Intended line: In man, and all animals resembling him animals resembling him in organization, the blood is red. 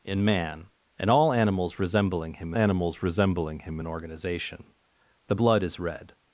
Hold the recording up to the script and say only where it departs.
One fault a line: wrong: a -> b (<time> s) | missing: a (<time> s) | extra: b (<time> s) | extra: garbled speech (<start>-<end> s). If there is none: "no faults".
no faults